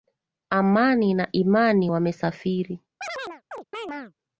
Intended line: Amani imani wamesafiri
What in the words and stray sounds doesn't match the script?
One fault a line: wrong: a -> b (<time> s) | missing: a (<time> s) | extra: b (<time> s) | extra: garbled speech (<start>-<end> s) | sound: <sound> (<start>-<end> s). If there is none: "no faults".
extra: na (1.1 s)
sound: chirp (3.0-4.1 s)